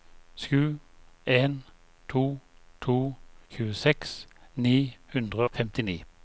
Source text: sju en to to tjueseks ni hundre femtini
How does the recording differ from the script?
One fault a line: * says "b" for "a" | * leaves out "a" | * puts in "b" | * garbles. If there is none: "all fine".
all fine